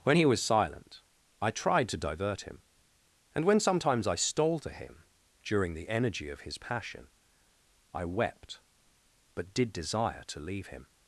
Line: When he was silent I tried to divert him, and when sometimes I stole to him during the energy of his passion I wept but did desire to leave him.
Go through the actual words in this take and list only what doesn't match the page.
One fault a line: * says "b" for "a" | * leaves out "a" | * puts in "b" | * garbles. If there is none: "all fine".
all fine